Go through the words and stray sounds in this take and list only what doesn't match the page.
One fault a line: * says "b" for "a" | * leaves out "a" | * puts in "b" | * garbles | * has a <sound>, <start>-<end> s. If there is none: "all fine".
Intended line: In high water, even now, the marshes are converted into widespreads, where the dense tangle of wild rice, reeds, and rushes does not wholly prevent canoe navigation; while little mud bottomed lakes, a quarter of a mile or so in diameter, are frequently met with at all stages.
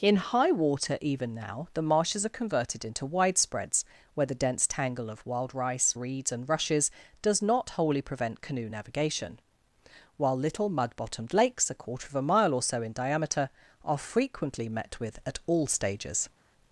all fine